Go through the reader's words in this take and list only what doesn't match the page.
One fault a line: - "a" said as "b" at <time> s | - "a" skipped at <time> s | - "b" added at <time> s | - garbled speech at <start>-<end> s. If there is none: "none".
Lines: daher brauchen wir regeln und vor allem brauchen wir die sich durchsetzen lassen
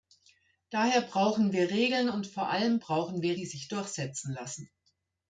none